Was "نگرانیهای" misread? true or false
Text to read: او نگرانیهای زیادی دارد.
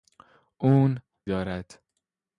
true